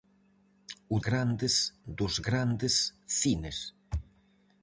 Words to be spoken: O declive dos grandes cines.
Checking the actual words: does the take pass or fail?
fail